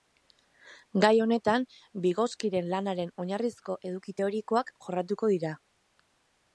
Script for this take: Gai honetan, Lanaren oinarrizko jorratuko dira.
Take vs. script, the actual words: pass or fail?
fail